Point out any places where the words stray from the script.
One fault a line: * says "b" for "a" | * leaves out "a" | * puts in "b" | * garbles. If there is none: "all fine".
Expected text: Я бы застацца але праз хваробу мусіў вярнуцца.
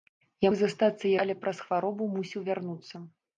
all fine